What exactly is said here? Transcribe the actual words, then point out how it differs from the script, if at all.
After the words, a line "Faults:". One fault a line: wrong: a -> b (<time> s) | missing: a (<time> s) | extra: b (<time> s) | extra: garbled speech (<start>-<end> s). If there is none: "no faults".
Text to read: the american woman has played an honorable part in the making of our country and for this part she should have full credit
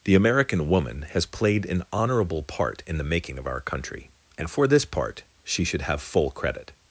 the american woman has played an honorable part in the making of our country and for this part she should have full credit
Faults:
no faults